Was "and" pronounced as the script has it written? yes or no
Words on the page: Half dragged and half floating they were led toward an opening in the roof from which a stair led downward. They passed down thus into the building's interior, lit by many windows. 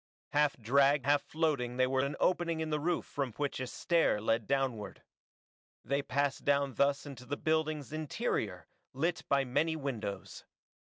no